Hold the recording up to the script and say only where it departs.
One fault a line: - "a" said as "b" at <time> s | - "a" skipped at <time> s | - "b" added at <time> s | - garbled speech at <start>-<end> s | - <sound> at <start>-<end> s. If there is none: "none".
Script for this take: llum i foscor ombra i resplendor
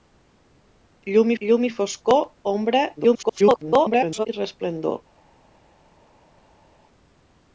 - "llum" added at 1.4 s
- garbled speech at 3.0-4.3 s